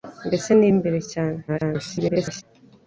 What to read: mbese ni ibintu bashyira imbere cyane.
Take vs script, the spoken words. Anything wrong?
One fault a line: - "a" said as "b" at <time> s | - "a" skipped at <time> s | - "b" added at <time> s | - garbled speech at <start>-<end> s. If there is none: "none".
- "ibintu bashyira" skipped at 0.7 s
- garbled speech at 1.5-2.4 s